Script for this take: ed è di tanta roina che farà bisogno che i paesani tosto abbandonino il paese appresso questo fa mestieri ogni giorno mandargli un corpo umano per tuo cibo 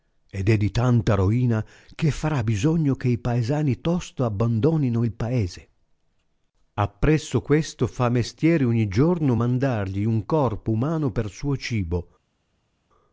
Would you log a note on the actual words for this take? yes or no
yes